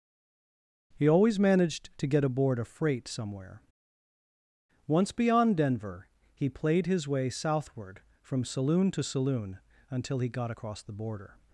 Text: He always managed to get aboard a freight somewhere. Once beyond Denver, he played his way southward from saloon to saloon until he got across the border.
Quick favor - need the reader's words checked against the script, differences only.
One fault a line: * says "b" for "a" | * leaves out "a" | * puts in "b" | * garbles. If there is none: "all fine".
all fine